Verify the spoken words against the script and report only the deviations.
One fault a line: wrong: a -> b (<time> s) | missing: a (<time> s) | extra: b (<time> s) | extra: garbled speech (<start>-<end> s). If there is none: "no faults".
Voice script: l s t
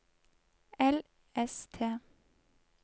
no faults